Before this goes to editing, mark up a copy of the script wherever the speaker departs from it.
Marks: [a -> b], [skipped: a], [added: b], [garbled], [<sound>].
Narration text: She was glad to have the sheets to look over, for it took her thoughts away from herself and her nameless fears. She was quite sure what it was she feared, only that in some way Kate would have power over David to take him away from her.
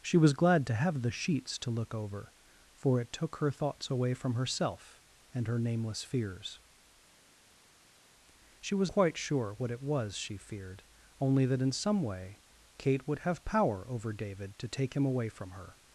She was glad to have the sheets to look over, for it took her thoughts away from herself and her nameless fears. She was quite sure what it was she feared, only that in some way Kate would have power over David to take him away from her.